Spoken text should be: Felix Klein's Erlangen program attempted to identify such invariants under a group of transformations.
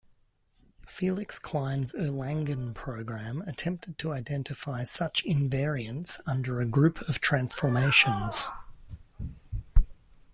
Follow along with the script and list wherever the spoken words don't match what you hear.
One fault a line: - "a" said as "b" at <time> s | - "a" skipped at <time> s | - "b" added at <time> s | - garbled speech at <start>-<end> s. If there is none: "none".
none